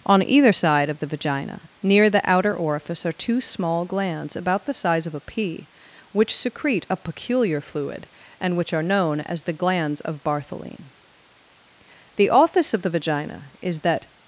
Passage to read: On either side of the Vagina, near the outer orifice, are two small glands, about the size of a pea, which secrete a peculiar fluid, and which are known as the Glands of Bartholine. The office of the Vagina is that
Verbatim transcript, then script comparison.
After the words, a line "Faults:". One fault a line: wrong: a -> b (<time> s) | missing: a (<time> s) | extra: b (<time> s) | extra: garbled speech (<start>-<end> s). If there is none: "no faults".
On either side of the Vagina, near the outer orifice, are two small glands, about the size of a pea, which secrete a peculiar fluid, and which are known as the Glands of Bartholine. The office of the Vagina is that
Faults:
no faults